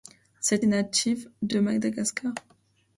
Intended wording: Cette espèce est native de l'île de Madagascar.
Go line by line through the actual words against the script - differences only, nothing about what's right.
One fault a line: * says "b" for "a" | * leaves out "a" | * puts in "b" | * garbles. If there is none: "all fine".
* leaves out "espèce"
* leaves out "l'île"